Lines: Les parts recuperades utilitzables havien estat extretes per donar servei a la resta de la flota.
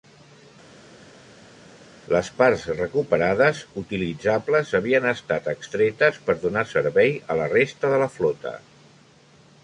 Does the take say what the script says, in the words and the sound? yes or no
yes